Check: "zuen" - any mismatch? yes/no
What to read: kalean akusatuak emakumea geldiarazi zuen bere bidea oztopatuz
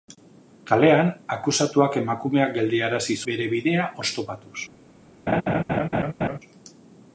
yes